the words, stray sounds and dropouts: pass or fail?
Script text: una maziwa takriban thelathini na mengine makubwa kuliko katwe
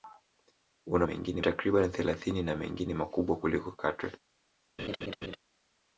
fail